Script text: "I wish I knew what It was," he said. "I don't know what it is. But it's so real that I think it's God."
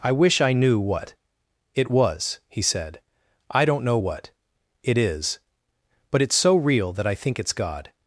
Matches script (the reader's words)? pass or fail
pass